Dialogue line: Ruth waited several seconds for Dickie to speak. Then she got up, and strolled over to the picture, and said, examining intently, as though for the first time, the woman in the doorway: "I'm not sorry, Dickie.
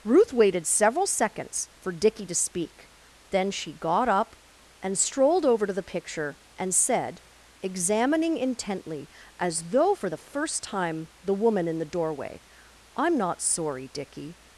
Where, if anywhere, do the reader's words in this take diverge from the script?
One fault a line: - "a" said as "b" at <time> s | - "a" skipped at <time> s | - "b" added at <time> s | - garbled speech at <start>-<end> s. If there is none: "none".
none